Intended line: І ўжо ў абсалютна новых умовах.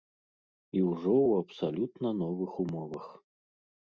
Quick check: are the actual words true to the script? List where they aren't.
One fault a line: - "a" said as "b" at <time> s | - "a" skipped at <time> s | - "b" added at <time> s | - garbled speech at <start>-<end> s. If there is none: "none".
none